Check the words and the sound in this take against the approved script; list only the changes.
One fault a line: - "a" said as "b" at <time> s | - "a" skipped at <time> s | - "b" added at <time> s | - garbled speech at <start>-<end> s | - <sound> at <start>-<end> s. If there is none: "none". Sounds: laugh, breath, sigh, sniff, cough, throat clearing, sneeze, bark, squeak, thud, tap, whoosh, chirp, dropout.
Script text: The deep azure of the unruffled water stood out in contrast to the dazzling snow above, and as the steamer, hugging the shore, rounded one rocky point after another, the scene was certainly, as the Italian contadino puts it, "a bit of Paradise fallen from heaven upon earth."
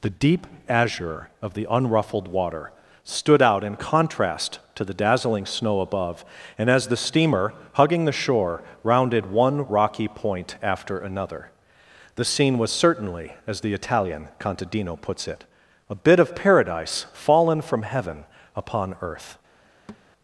- thud at 19.9-20.1 s